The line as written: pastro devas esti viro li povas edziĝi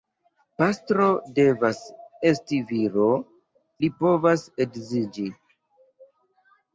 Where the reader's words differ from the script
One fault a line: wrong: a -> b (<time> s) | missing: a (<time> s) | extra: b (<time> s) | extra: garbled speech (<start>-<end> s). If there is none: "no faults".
no faults